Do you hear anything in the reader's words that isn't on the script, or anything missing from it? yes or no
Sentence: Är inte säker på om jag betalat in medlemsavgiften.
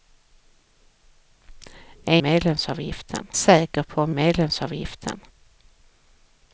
yes